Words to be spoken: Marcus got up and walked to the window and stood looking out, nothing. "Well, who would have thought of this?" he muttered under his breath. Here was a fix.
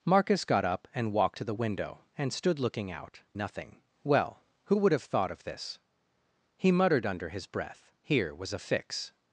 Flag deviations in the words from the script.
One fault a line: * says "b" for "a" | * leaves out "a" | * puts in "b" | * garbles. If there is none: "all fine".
all fine